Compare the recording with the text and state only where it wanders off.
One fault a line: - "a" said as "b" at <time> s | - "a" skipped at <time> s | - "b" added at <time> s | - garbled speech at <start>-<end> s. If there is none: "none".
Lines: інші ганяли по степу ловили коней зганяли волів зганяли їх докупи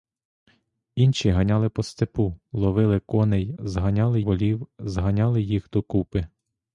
none